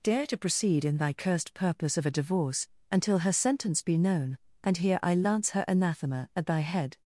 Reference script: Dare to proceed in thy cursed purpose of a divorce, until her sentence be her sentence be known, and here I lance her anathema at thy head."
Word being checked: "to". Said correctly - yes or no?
yes